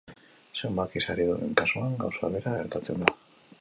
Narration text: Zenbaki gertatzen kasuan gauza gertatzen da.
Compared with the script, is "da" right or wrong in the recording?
right